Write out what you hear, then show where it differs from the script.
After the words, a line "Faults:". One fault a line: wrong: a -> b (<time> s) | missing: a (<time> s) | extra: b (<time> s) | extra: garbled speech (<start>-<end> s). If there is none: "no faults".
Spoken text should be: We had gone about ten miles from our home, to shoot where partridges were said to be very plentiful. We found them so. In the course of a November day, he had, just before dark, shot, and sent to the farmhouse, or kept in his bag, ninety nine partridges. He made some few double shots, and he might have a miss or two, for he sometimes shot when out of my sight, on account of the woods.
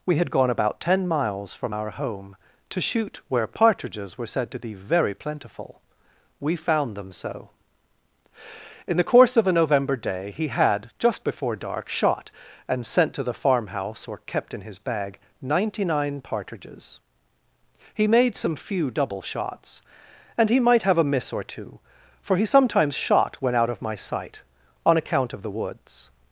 We had gone about ten miles from our home, to shoot where partridges were said to be very plentiful. We found them so. In the course of a November day, he had, just before dark, shot, and sent to the farmhouse, or kept in his bag, ninety nine partridges. He made some few double shots, and he might have a miss or two, for he sometimes shot when out of my sight, on account of the woods.
Faults:
no faults